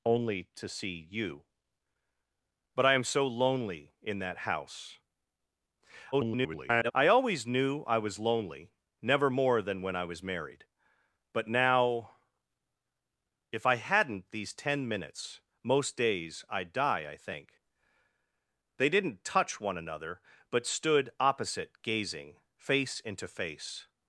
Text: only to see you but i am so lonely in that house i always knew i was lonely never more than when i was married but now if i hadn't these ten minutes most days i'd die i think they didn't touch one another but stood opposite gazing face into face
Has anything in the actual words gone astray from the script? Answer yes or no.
yes